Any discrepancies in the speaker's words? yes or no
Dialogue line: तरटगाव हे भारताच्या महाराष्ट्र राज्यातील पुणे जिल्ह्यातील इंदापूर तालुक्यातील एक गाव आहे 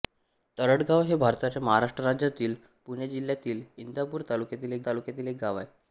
yes